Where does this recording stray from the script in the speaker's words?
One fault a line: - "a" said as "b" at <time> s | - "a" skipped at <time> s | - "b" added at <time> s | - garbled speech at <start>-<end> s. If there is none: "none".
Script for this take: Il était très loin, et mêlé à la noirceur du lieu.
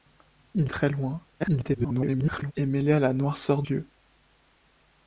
- "était" skipped at 0.7 s
- garbled speech at 1.4-2.5 s
- "du" skipped at 3.6 s